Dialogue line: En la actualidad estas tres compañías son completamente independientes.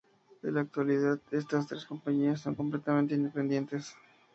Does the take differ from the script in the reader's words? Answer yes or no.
no